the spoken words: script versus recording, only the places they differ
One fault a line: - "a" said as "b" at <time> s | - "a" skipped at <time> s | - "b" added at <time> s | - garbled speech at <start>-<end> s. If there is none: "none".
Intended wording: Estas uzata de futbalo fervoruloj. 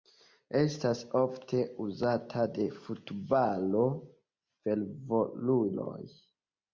- "ofte" added at 1.2 s